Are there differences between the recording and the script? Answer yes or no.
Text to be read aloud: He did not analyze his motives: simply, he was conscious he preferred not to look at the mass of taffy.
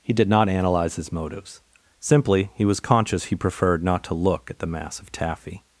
no